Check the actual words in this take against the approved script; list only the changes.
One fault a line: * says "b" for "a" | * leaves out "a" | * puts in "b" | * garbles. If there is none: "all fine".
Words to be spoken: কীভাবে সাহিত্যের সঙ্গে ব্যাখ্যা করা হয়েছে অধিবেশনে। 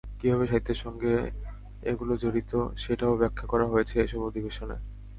* puts in "এগুলো জড়িত সেটাও"
* puts in "এসব"